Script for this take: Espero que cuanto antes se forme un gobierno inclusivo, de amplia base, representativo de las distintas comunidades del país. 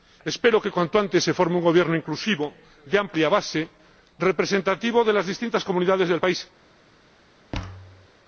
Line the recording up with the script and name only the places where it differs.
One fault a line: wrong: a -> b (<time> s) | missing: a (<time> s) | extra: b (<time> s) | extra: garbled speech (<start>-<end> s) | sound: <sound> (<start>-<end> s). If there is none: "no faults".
sound: thud (7.5-8.1 s)